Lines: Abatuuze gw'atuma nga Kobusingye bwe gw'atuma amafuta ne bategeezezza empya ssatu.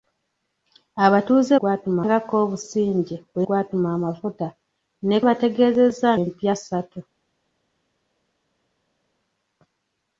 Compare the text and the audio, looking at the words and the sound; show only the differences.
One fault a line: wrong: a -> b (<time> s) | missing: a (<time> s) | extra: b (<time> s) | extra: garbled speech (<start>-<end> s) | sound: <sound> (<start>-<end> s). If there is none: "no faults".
no faults